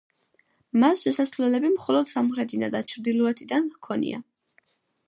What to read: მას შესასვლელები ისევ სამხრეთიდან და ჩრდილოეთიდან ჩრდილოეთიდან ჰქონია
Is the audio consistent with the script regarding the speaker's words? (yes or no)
no